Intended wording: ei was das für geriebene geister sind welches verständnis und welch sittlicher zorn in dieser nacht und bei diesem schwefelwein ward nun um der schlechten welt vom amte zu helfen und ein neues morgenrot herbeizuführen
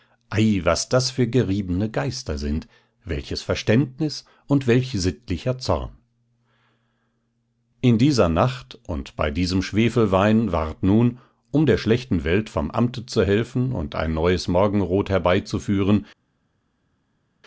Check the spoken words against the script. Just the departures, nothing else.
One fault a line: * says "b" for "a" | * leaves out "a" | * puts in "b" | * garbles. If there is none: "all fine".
all fine